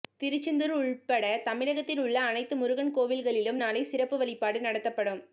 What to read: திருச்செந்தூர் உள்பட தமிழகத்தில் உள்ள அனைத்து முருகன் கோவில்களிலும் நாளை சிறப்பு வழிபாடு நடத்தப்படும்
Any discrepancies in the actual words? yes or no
no